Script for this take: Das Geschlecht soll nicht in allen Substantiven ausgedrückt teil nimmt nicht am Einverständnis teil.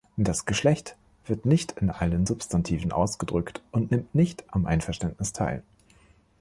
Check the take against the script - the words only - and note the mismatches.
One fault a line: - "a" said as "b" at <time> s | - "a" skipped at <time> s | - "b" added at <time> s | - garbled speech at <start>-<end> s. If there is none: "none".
- "soll" said as "wird" at 1.2 s
- "teil" said as "und" at 3.7 s